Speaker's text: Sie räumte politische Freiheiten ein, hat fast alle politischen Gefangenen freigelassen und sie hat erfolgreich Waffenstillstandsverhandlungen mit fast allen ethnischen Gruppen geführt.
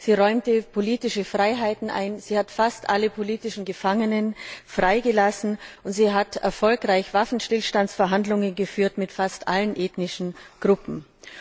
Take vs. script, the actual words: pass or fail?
fail